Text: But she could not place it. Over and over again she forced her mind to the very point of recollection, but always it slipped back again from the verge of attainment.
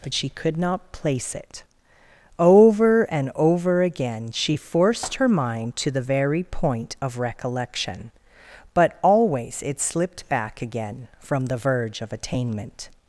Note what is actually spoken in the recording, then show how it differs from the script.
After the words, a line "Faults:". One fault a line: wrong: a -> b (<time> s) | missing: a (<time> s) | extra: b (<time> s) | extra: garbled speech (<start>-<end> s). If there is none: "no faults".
But she could not place it. Over and over again she forced her mind to the very point of recollection, but always it slipped back again from the verge of attainment.
Faults:
no faults